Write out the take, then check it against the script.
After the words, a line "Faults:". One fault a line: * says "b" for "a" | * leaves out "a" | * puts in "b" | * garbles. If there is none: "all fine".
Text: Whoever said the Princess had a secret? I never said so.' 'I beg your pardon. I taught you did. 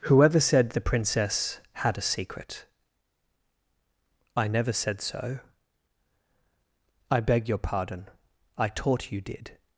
Whoever said the Princess had a secret? I never said so.' 'I beg your pardon. I taught you did.
Faults:
all fine